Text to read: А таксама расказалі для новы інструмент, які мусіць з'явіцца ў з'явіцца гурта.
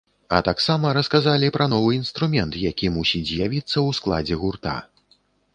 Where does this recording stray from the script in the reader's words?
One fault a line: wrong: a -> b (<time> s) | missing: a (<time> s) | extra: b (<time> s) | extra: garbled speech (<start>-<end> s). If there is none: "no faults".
wrong: для -> пра (1.6 s)
wrong: з'явіцца -> складзе (4.0 s)